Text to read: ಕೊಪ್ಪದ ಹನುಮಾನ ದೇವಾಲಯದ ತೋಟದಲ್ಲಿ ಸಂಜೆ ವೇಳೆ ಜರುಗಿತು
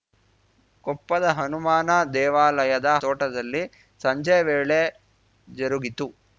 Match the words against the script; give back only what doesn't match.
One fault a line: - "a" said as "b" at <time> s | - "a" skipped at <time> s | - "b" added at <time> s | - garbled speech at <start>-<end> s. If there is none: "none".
none